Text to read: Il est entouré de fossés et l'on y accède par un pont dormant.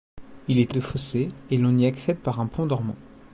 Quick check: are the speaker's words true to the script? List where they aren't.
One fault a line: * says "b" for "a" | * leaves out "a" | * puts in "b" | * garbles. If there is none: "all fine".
* leaves out "entouré"